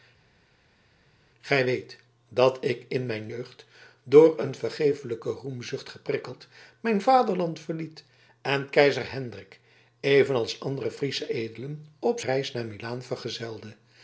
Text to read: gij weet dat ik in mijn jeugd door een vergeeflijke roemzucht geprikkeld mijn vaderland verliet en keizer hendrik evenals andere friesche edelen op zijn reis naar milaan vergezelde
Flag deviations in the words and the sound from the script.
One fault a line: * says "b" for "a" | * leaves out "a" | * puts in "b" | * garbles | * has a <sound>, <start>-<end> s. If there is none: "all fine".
* leaves out "zijn"